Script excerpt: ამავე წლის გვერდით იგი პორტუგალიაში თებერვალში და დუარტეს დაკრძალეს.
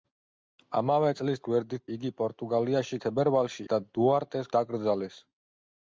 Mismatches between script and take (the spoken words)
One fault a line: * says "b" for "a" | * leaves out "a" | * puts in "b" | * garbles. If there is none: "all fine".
all fine